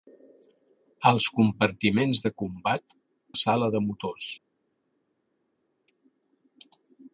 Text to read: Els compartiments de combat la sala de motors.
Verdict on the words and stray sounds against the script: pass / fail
pass